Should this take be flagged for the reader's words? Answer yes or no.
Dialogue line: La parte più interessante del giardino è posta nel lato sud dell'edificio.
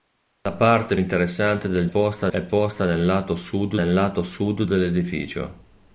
yes